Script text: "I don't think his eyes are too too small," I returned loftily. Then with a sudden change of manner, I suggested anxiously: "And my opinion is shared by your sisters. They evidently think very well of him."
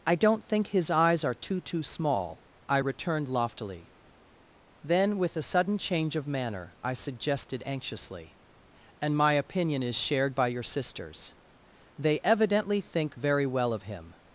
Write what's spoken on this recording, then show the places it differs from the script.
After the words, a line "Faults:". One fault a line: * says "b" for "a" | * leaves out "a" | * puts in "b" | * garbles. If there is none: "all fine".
"I don't think his eyes are too too small," I returned loftily. Then with a sudden change of manner, I suggested anxiously: "And my opinion is shared by your sisters. They evidently think very well of him."
Faults:
all fine